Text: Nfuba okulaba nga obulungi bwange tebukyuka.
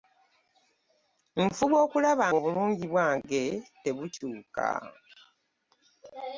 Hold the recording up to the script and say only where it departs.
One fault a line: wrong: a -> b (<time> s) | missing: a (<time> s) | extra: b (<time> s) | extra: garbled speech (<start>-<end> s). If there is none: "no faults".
missing: nga (2.3 s)